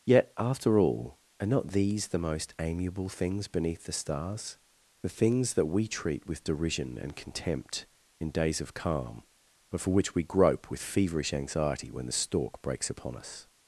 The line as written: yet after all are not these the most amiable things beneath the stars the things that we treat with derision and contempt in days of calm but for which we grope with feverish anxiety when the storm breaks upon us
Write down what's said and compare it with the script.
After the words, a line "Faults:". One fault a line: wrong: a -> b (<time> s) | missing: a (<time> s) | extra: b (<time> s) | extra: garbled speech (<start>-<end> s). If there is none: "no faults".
yet after all are not these the most amiable things beneath the stars the things that we treat with derision and contempt in days of calm but for which we grope with feverish anxiety when the stork breaks upon us
Faults:
wrong: storm -> stork (12.1 s)